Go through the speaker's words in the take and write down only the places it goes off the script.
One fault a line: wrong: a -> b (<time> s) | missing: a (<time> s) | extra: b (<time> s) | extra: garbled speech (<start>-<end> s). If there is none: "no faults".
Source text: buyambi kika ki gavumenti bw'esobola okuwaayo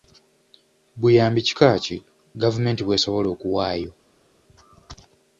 no faults